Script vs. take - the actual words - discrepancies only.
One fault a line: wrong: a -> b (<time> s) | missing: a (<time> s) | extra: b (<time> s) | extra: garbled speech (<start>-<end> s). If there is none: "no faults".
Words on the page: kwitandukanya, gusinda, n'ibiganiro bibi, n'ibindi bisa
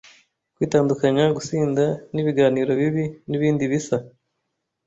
no faults